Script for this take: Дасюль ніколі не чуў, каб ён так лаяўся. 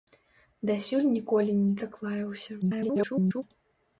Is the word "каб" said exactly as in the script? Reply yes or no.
no